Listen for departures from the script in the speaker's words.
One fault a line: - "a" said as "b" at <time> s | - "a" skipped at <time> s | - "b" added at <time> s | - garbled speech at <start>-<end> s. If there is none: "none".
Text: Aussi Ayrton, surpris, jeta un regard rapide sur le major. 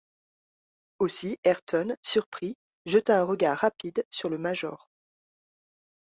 none